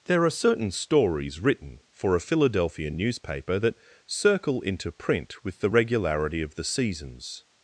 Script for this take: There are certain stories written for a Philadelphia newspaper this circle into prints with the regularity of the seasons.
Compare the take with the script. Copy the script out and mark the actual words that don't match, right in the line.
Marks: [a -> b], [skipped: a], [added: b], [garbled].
There are certain stories written for a Philadelphia newspaper [this -> that] circle into [prints -> print] with the regularity of the seasons.